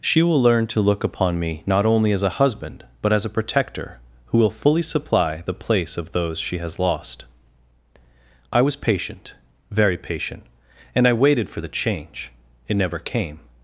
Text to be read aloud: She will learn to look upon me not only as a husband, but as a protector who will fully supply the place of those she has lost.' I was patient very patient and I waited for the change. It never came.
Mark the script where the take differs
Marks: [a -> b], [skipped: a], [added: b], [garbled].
She will learn to look upon me not only as a husband, but as a protector who will fully supply the place of those she has lost.' I was patient very patient and I waited for the change. It never came.